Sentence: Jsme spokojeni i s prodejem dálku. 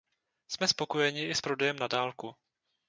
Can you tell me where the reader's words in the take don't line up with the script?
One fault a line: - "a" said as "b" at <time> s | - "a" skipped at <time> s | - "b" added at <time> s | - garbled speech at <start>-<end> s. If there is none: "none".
- "na" added at 1.8 s